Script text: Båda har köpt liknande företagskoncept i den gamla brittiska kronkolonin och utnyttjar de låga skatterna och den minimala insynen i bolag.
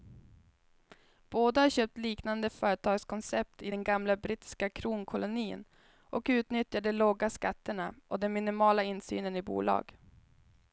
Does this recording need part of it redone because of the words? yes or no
no